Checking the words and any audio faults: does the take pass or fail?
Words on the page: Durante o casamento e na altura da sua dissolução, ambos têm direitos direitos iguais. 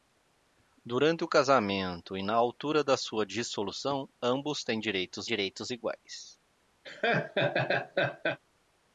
fail